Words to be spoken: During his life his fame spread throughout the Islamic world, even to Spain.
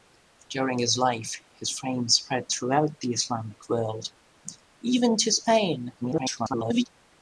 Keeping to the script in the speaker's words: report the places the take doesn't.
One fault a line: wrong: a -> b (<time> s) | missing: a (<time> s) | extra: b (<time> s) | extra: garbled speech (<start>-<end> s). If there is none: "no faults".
extra: garbled speech (6.0-6.8 s)